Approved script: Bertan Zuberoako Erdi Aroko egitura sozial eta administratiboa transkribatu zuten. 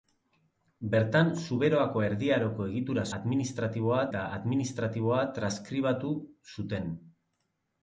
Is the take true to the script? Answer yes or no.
no